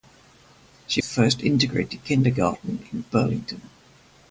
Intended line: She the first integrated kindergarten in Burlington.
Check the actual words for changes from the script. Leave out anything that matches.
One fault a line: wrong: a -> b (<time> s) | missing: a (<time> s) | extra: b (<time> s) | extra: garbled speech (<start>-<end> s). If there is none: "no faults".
no faults